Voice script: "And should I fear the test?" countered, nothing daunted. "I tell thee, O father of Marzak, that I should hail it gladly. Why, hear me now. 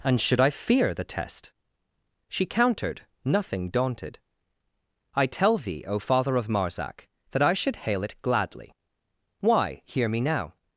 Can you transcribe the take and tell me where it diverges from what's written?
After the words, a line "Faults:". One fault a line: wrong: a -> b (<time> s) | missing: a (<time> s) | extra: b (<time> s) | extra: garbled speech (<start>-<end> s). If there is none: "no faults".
"And should I fear the test?" she countered, nothing daunted. "I tell thee, O father of Marzak, that I should hail it gladly. Why, hear me now.
Faults:
extra: she (2.3 s)